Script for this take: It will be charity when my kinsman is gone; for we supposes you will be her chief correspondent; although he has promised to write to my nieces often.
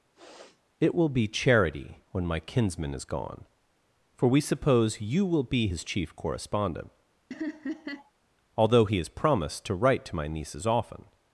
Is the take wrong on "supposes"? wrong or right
wrong